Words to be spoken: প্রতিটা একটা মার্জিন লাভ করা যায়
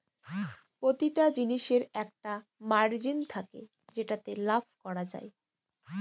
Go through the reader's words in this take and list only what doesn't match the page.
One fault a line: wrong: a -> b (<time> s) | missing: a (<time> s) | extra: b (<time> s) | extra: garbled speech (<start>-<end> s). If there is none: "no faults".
extra: জিনিসের (1.4 s)
extra: থাকে যেটাতে (3.3 s)